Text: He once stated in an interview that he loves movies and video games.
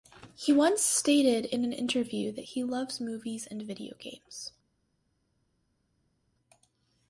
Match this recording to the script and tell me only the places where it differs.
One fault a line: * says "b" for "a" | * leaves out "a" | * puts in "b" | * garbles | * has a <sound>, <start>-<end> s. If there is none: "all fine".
all fine